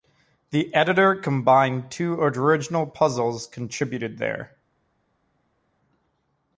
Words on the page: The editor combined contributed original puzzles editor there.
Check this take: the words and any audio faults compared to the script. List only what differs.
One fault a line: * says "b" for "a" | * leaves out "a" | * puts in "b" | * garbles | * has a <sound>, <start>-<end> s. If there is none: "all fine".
* says "two" for "contributed"
* says "contributed" for "editor"